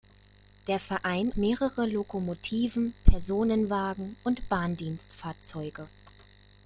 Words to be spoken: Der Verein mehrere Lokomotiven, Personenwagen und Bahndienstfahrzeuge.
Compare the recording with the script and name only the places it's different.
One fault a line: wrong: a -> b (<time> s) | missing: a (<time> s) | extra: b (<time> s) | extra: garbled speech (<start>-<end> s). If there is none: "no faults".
no faults